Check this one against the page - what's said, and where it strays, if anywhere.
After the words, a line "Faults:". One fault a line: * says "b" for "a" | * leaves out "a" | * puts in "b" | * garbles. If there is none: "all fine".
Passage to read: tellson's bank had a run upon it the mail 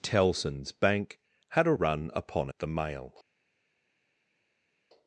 tellson's bank had a run upon it the mail
Faults:
all fine